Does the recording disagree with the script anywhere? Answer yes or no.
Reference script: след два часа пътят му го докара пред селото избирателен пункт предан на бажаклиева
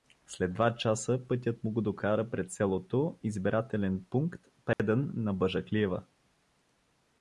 no